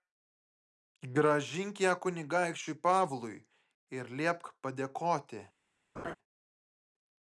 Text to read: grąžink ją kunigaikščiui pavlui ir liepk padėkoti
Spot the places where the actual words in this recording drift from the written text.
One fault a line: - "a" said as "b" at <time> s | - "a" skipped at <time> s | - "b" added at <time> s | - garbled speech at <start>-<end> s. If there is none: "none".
none